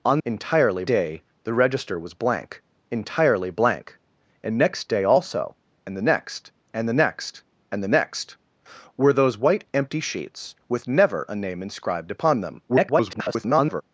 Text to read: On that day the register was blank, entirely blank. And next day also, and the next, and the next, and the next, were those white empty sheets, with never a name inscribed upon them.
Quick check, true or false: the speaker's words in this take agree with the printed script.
false